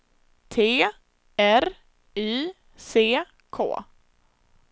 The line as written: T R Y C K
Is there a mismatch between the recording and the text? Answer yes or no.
no